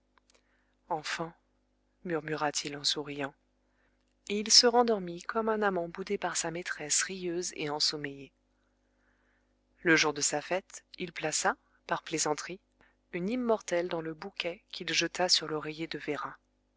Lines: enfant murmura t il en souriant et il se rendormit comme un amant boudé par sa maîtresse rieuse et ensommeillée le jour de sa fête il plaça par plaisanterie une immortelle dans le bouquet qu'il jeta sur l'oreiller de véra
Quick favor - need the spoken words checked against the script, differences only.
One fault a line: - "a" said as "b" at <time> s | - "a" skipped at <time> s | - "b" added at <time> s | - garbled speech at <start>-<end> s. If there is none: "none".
none